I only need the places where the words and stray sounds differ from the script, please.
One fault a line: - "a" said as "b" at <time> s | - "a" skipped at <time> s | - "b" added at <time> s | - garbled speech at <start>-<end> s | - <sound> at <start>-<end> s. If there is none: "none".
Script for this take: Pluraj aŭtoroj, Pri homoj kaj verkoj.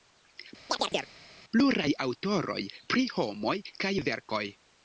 - chirp at 0.7-1.1 s